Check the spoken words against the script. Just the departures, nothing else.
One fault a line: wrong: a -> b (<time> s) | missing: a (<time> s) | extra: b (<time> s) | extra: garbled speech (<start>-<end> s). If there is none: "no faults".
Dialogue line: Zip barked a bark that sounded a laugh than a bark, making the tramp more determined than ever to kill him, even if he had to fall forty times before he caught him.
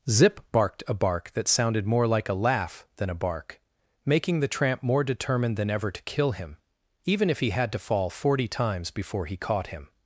extra: more like (1.9 s)